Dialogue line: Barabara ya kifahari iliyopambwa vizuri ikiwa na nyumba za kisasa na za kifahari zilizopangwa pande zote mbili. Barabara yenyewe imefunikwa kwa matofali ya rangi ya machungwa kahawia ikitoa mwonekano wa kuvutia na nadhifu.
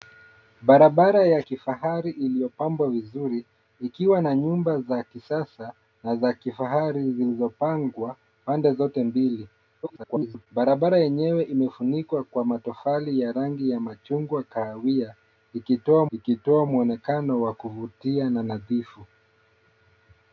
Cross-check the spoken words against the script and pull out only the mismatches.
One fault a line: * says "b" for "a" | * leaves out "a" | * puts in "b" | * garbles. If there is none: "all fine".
* garbles
* puts in "ikitoa"